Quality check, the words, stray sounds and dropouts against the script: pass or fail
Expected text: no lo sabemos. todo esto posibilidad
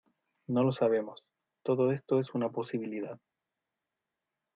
fail